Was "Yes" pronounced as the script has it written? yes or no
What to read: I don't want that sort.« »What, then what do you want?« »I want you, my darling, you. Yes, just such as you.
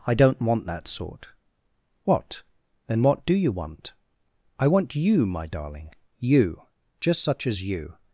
no